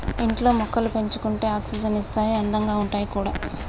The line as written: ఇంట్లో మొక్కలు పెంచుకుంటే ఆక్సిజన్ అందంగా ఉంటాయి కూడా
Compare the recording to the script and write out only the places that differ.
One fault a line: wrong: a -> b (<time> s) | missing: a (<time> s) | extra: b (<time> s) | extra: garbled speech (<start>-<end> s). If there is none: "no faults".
extra: ఇస్తాయి (2.0 s)